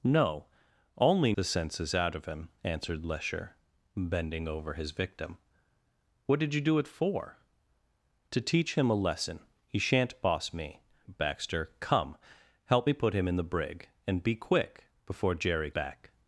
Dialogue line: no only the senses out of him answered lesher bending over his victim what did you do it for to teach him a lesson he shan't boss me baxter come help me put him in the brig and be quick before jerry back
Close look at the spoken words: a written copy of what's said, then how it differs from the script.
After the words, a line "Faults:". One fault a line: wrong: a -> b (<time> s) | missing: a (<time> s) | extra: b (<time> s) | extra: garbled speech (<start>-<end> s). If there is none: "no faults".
no only the senses out of him answered lesher bending over his victim what did you do it for to teach him a lesson he shan't boss me baxter come help me put him in the brig and be quick before jerry back
Faults:
no faults